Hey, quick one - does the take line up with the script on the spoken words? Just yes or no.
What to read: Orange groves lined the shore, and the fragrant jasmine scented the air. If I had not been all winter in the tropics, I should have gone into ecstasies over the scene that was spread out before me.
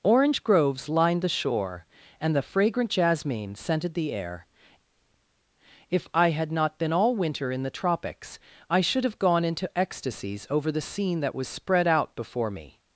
yes